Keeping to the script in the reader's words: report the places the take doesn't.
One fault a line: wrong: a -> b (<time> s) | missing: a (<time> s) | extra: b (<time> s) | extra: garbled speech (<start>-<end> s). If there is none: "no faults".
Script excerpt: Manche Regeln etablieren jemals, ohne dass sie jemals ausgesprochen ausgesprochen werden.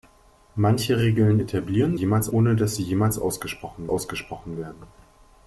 no faults